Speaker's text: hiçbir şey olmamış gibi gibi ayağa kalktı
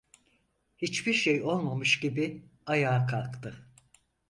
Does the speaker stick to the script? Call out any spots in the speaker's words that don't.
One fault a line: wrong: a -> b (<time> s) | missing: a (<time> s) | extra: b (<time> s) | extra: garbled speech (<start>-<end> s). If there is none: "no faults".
missing: gibi (2.4 s)